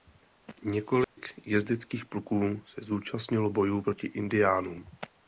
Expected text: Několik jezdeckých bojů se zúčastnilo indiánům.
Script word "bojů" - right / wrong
wrong